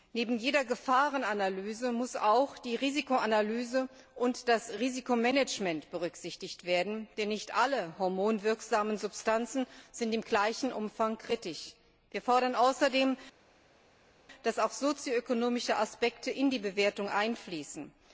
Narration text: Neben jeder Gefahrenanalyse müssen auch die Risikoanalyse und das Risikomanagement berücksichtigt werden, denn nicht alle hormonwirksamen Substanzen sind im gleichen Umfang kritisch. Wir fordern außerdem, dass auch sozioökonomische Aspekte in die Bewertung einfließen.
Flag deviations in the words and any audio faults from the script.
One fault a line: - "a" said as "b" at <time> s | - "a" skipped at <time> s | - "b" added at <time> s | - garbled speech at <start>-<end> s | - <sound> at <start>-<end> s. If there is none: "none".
none